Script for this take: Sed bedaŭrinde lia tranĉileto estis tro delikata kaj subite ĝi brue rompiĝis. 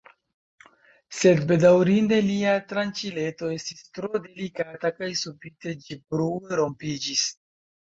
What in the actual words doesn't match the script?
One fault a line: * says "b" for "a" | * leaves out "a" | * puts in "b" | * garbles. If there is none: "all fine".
all fine